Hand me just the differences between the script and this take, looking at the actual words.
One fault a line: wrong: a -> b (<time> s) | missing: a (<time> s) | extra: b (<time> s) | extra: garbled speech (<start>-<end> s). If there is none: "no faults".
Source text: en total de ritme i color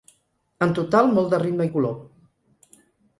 extra: molt (1.2 s)